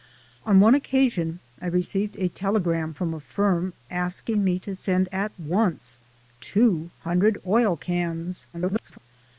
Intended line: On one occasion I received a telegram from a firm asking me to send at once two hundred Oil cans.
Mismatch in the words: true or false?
true